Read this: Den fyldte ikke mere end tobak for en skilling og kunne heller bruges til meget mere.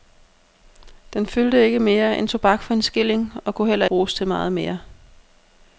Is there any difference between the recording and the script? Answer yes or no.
no